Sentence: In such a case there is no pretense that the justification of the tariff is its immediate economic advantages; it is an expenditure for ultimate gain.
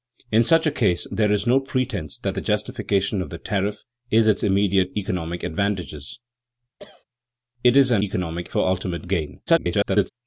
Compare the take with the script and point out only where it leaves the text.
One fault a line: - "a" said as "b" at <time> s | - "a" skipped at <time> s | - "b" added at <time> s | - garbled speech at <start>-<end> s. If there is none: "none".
- "expenditure" said as "economic" at 8.0 s
- garbled speech at 9.5-10.1 s